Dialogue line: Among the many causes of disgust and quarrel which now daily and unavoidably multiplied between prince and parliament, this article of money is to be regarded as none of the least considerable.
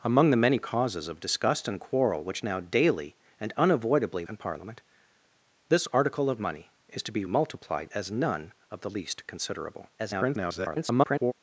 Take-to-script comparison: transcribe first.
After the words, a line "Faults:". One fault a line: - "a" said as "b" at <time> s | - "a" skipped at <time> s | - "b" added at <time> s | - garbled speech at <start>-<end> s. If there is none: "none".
Among the many causes of disgust and quarrel which now daily and unavoidably and parliament, this article of money is to be multiplied as none of the least considerable. [garbled]
Faults:
- "multiplied between prince" skipped at 4.2 s
- "regarded" said as "multiplied" at 7.2 s
- garbled speech at 10.0-11.3 s